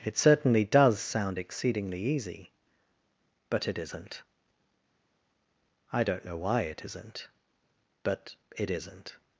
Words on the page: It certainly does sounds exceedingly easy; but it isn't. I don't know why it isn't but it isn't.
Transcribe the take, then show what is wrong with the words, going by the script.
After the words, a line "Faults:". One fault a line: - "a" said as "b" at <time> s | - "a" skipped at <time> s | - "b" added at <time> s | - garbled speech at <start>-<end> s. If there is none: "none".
It certainly does sound exceedingly easy; but it isn't. I don't know why it isn't but it isn't.
Faults:
- "sounds" said as "sound" at 1.0 s